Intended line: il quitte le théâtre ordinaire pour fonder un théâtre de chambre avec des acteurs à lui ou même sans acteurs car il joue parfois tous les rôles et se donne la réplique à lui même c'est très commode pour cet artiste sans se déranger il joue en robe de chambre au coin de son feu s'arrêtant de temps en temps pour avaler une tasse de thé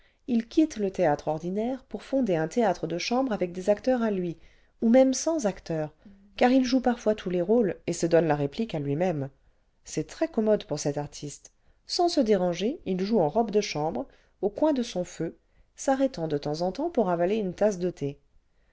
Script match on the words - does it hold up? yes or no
yes